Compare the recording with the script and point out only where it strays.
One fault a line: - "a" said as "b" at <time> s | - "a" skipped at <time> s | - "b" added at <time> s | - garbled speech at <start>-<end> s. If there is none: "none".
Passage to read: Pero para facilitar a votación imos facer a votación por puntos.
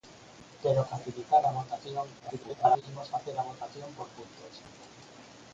- "para" skipped at 0.8 s
- garbled speech at 2.2-2.8 s